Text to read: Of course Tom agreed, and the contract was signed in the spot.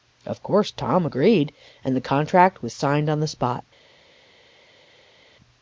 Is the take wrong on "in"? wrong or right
wrong